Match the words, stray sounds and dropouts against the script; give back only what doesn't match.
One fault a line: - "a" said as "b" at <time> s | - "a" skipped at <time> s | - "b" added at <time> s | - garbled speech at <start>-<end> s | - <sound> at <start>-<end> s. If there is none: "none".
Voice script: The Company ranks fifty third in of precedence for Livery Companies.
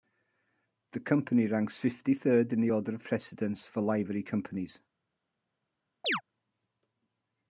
- "the order" added at 2.6 s
- chirp at 6.0-6.2 s